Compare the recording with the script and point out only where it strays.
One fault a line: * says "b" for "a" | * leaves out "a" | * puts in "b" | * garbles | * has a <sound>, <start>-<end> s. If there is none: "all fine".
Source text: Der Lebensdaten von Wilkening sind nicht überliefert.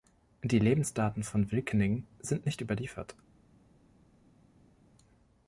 * says "Die" for "Der"